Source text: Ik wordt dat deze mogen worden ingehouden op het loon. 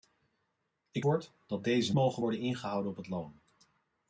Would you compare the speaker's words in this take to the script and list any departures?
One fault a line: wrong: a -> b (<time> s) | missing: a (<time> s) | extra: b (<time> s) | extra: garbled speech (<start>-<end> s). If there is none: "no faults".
no faults